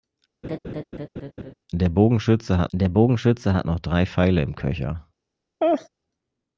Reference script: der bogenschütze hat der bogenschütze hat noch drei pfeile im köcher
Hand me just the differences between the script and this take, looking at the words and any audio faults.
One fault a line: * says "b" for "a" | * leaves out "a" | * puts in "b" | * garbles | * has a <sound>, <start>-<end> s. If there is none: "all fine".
* has a laugh, 0.4-1.5 s
* has a laugh, 5.6-5.9 s